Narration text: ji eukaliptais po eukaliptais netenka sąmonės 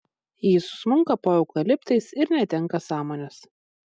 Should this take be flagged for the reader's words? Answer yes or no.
yes